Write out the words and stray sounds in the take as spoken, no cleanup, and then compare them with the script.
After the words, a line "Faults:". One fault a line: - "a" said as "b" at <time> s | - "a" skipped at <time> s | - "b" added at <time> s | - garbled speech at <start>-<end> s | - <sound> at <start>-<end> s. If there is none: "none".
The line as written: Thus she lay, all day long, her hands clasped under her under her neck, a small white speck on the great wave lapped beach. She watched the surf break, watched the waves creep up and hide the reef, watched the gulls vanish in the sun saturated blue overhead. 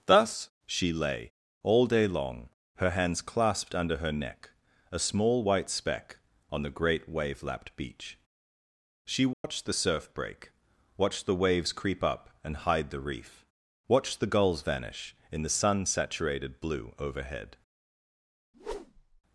Thus she lay, all day long, her hands clasped under her neck, a small white speck on the great wave lapped beach. She watched the surf break, watched the waves creep up and hide the reef, watched the gulls vanish in the sun saturated blue overhead.
Faults:
- "under her" skipped at 4.1 s
- dropout at 9.3-9.4 s
- whoosh at 18.5-19.2 s